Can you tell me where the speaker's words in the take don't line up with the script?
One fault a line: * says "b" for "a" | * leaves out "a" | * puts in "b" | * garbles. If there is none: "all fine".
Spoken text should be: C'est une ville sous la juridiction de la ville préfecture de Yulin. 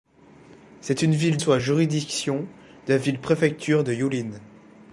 all fine